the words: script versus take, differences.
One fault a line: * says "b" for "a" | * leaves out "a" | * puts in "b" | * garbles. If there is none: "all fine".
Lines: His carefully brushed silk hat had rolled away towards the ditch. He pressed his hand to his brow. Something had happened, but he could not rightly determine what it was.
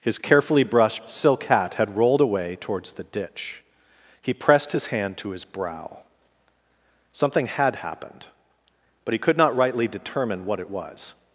all fine